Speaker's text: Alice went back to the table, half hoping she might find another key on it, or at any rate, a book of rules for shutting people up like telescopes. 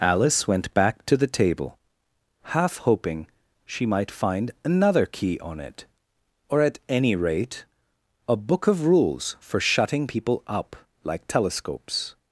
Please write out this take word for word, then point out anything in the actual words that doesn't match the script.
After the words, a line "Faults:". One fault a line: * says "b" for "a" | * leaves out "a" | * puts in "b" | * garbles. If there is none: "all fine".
Alice went back to the table, half hoping she might find another key on it, or at any rate, a book of rules for shutting people up like telescopes.
Faults:
all fine